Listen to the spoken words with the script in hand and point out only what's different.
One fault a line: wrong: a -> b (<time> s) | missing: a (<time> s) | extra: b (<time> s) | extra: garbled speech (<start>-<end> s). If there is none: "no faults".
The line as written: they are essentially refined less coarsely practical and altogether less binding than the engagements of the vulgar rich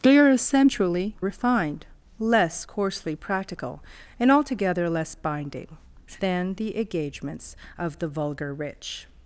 no faults